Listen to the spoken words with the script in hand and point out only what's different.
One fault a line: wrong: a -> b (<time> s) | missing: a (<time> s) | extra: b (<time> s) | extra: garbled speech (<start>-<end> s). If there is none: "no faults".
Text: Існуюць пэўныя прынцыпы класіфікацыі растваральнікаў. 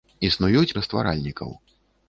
missing: пэўныя прынцыпы класіфікацыі (0.8 s)